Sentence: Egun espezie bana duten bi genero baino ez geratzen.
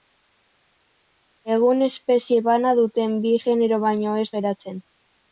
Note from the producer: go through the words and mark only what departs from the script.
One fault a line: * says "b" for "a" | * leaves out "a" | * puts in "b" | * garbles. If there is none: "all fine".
all fine